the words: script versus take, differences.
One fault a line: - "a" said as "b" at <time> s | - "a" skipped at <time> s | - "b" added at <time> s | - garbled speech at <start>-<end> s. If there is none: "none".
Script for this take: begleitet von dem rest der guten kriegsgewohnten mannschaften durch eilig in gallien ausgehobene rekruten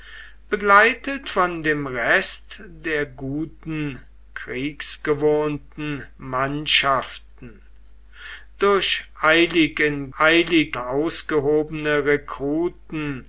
- "gallien" said as "eilig" at 10.2 s